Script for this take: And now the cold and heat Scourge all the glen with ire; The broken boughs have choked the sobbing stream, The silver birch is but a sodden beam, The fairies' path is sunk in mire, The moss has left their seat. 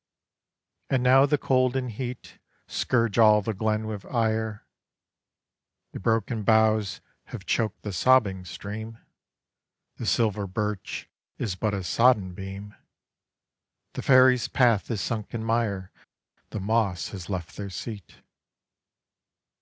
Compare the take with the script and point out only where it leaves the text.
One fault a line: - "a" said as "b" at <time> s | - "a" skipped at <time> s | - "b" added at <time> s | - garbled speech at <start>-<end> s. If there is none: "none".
none